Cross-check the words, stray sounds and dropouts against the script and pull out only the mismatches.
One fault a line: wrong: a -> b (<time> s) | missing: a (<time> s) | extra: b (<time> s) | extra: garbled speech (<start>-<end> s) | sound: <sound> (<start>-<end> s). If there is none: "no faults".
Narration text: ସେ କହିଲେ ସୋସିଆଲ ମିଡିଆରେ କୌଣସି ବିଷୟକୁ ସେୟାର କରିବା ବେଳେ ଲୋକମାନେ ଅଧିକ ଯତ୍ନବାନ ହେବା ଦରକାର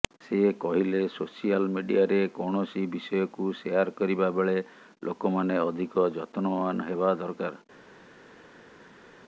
no faults